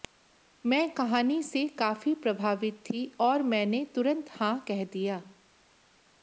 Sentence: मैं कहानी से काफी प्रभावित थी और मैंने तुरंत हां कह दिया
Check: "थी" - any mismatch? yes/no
no